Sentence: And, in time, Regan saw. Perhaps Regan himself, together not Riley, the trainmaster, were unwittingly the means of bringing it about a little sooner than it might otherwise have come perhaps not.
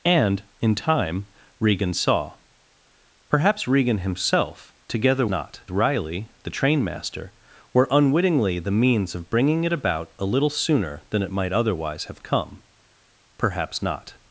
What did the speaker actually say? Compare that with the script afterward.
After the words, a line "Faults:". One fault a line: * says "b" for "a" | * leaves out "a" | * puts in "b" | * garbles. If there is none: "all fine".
And, in time, Regan saw. Perhaps Regan himself, together not Riley, the trainmaster, were unwittingly the means of bringing it about a little sooner than it might otherwise have come perhaps not.
Faults:
all fine